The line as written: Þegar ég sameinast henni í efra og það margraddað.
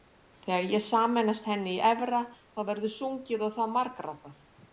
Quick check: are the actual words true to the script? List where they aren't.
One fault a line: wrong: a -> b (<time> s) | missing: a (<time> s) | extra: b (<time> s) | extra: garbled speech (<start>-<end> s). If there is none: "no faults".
extra: þá verður sungið (2.3 s)